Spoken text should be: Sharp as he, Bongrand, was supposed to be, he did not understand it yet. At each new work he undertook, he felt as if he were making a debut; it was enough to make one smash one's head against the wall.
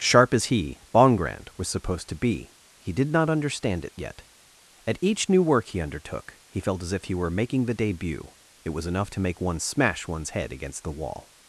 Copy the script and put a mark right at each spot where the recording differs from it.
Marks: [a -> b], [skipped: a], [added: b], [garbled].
Sharp as he, Bongrand, was supposed to be, he did not understand it yet. At each new work he undertook, he felt as if he were making [a -> the] debut; it was enough to make one smash one's head against the wall.